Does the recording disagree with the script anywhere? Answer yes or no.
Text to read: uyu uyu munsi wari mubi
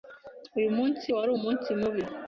yes